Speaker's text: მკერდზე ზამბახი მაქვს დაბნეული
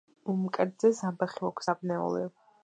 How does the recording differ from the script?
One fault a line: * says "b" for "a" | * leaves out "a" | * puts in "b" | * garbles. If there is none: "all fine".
all fine